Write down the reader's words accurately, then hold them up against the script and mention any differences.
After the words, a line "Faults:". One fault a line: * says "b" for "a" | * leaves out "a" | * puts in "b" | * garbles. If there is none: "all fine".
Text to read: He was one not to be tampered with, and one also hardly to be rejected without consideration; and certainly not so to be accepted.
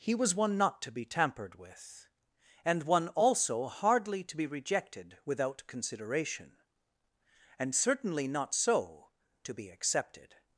He was one not to be tampered with, and one also hardly to be rejected without consideration; and certainly not so to be accepted.
Faults:
all fine